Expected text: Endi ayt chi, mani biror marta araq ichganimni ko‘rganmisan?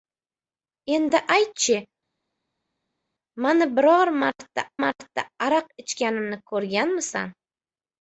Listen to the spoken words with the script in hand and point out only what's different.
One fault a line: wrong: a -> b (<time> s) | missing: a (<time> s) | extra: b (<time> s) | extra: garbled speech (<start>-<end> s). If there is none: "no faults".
extra: marta (4.9 s)